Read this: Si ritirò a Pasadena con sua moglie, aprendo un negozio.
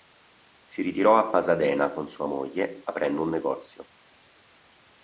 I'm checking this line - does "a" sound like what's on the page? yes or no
yes